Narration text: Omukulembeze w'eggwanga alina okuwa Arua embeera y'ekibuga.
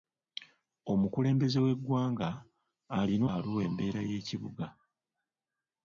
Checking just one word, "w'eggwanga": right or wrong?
right